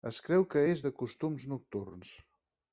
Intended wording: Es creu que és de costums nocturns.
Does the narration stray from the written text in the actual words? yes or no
no